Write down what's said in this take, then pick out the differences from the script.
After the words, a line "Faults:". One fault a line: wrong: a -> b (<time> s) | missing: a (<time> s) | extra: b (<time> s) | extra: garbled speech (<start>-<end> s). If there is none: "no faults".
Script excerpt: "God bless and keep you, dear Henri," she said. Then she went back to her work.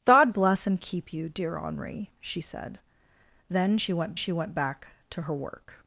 "God bless and keep you, dear Henri," she said. Then she went she went back to her work.
Faults:
extra: she went (4.1 s)